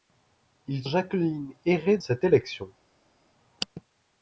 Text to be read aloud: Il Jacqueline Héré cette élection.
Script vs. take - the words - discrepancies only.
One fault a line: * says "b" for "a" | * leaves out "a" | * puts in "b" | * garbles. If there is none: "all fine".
all fine